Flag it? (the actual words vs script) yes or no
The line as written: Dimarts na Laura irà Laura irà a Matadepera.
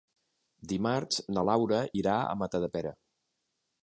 yes